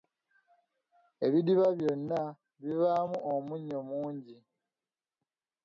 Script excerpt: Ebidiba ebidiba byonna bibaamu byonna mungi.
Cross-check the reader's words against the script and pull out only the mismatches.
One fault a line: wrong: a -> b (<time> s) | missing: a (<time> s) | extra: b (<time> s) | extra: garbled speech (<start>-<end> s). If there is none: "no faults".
missing: ebidiba (1.7 s)
wrong: byonna -> omunnyo (3.3 s)